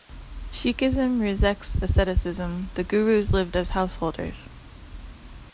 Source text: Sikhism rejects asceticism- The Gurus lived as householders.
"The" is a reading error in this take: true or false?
false